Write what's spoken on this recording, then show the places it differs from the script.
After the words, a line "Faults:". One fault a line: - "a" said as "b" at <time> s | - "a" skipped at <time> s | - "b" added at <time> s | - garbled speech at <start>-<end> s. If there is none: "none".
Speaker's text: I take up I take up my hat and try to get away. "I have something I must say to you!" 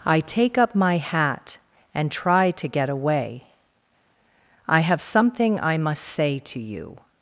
I take up my hat and try to get away. "I have something I must say to you!"
Faults:
- "I take up" skipped at 0.7 s